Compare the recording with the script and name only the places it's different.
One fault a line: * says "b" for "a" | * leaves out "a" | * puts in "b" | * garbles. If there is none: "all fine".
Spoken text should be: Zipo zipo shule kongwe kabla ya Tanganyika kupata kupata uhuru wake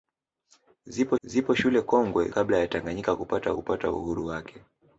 all fine